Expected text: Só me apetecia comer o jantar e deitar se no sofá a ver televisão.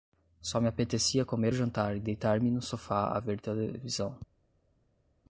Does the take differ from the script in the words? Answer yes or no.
yes